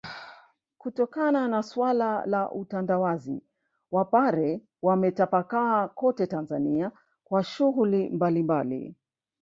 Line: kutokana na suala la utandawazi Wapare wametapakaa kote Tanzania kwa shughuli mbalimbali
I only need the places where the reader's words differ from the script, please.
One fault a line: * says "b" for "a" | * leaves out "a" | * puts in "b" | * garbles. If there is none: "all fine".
all fine